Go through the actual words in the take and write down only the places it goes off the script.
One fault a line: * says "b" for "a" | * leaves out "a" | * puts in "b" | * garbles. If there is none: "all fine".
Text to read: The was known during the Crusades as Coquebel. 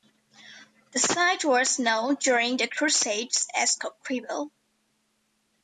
* puts in "site"